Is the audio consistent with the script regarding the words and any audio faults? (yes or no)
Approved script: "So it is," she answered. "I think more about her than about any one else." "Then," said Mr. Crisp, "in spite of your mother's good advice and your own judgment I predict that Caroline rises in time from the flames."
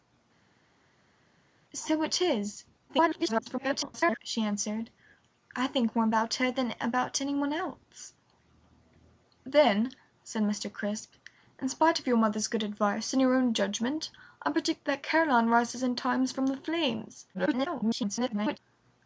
no